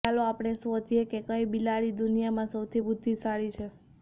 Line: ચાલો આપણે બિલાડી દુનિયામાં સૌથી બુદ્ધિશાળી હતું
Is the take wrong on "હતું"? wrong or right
wrong